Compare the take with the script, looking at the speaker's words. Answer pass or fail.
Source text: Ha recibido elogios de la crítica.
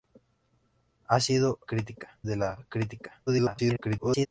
fail